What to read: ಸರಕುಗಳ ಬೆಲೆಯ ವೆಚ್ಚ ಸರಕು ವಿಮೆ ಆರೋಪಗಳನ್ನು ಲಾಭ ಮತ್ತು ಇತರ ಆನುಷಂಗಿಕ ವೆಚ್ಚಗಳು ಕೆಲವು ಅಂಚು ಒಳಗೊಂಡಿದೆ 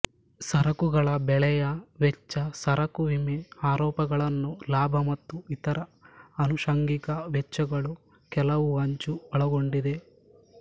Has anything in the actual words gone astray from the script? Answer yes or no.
no